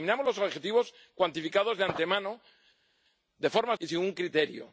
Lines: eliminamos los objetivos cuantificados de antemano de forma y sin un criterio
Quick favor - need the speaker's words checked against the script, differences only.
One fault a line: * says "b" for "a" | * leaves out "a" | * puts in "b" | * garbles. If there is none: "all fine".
all fine